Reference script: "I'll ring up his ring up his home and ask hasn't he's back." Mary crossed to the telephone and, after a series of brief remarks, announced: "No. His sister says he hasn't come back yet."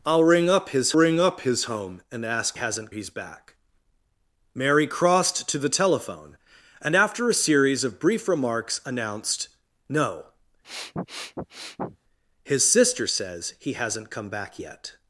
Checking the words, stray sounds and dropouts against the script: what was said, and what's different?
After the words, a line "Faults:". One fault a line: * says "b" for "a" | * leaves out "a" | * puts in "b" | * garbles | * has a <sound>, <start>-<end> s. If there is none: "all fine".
"I'll ring up his ring up his home and ask hasn't he's back." Mary crossed to the telephone and, after a series of brief remarks, announced: "No. His sister says he hasn't come back yet."
Faults:
* has a sniff, 10.6-12.0 s